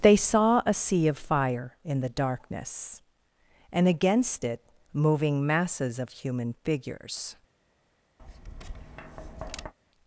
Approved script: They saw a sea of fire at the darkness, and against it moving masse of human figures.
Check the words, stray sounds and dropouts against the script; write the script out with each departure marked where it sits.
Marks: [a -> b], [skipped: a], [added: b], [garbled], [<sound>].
They saw a sea of fire [at -> in] the darkness, and against it moving [masse -> masses] of human figures. [tap]